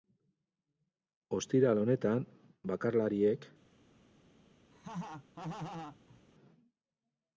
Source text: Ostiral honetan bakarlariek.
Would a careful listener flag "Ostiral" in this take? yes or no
no